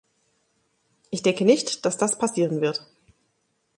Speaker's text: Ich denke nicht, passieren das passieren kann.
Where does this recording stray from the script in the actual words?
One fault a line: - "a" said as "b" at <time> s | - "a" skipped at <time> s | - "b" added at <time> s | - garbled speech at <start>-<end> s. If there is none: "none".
- "passieren" said as "dass" at 1.9 s
- "kann" said as "wird" at 2.6 s